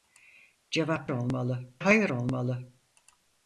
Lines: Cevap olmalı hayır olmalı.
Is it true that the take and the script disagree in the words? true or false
false